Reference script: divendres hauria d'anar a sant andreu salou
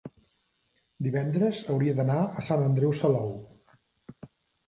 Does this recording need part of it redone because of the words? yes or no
no